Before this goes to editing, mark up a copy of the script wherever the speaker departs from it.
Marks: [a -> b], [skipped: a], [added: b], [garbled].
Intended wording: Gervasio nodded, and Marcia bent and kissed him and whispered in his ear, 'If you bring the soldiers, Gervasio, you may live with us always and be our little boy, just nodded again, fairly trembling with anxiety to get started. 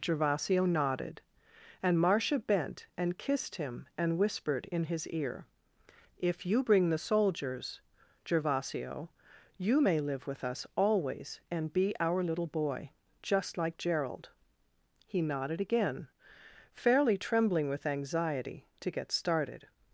Gervasio nodded, and Marcia bent and kissed him and whispered in his ear, 'If you bring the soldiers, Gervasio, you may live with us always and be our little boy, just [added: like Gerald He] nodded again, fairly trembling with anxiety to get started.